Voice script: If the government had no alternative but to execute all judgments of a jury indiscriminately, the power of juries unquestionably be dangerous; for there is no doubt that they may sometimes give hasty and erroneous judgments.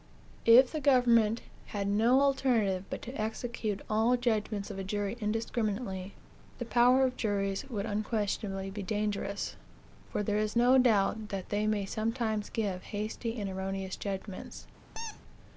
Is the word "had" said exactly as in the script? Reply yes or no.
yes